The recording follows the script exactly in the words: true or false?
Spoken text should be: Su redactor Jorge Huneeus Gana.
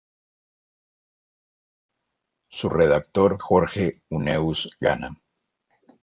true